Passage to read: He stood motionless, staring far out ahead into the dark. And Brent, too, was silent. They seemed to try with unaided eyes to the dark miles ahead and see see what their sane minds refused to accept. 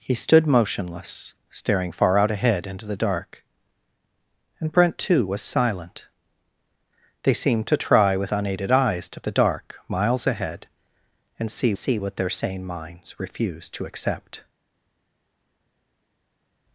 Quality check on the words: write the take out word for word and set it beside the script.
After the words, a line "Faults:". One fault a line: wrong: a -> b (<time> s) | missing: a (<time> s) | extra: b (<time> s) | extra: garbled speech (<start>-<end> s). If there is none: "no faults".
He stood motionless, staring far out ahead into the dark. And Brent, too, was silent. They seemed to try with unaided eyes to the dark miles ahead and see see what their sane minds refused to accept.
Faults:
no faults